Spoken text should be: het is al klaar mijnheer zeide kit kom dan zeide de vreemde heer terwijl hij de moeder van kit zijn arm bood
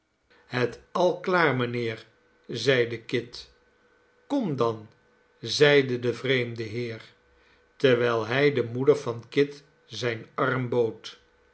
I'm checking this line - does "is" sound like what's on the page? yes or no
no